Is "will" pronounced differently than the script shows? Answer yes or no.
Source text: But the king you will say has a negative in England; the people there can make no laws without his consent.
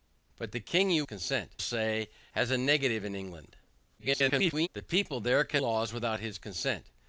yes